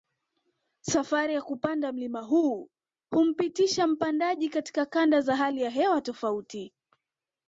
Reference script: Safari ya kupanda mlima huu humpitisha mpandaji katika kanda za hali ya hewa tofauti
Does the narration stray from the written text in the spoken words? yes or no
no